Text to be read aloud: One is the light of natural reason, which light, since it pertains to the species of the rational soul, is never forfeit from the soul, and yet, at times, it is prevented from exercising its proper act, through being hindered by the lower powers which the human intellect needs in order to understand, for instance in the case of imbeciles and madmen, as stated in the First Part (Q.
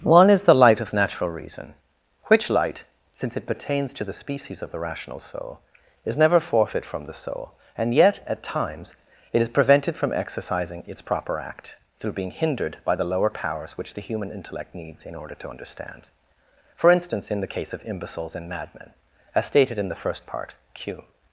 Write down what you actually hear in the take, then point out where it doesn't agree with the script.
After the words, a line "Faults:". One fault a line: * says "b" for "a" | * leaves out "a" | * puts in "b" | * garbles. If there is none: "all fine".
One is the light of natural reason, which light, since it pertains to the species of the rational soul, is never forfeit from the soul, and yet, at times, it is prevented from exercising its proper act, through being hindered by the lower powers which the human intellect needs in order to understand, for instance in the case of imbeciles and madmen, as stated in the First Part (Q.
Faults:
all fine